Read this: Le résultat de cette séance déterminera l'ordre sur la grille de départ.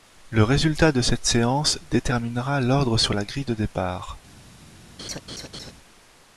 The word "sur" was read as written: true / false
true